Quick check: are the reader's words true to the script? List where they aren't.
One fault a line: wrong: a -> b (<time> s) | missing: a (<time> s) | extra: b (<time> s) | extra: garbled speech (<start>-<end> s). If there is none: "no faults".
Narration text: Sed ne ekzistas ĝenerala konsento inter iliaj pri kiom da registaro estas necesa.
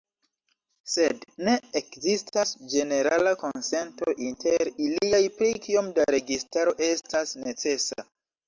no faults